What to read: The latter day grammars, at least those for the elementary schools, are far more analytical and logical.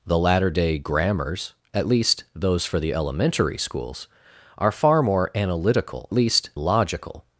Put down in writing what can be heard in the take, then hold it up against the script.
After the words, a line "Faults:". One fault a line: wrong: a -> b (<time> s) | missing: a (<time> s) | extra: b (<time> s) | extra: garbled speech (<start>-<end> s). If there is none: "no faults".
The latter day grammars, at least those for the elementary schools, are far more analytical least logical.
Faults:
wrong: and -> least (6.1 s)